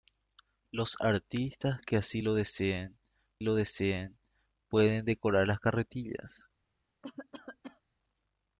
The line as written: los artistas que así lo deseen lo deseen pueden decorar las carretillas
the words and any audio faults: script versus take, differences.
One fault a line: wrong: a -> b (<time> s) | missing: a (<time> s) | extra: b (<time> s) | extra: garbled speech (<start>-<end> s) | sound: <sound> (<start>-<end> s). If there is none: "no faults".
sound: cough (7.0-7.8 s)